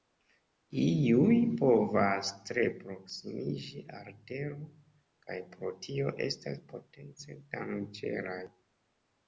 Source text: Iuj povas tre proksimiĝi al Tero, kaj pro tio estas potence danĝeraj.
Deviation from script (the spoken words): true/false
false